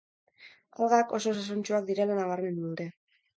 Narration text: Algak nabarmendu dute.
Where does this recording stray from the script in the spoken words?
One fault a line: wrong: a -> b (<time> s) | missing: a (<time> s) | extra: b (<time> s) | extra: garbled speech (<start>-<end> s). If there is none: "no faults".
extra: oso osasuntsuak direla (1.2 s)